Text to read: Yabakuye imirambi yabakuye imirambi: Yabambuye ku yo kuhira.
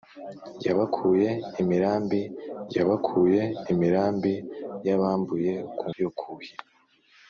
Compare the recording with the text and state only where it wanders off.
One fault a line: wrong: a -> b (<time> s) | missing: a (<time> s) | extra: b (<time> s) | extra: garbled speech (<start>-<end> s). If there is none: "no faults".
no faults